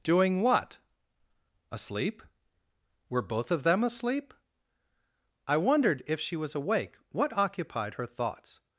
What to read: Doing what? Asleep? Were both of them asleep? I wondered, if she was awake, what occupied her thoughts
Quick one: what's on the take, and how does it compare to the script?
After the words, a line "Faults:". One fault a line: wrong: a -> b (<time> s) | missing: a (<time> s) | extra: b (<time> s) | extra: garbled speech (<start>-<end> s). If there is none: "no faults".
Doing what? Asleep? Were both of them asleep? I wondered, if she was awake, what occupied her thoughts
Faults:
no faults